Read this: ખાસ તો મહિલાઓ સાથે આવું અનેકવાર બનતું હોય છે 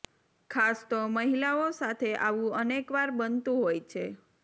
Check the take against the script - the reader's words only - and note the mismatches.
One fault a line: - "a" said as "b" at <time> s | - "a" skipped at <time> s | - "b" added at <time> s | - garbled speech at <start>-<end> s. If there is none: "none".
none